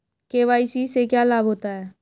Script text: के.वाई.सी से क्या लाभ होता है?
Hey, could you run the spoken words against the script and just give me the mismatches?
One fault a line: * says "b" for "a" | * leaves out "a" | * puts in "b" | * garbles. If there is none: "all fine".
all fine